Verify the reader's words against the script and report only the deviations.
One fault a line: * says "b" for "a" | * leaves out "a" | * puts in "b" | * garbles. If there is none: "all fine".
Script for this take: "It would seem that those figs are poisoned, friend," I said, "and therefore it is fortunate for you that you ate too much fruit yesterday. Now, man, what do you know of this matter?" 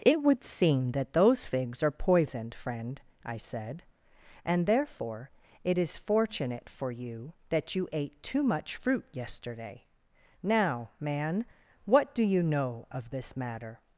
all fine